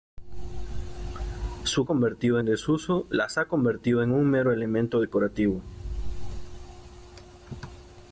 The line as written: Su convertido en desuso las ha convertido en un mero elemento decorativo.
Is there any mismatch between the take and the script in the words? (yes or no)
no